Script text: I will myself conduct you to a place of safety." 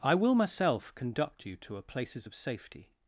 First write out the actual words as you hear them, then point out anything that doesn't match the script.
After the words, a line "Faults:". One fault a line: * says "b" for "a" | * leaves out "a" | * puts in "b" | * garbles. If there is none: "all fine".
I will myself conduct you to a places of safety."
Faults:
* says "places" for "place"